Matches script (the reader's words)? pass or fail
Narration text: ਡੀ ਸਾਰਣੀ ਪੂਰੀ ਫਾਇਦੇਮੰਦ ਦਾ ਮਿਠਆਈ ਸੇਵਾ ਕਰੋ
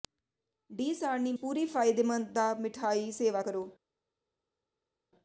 pass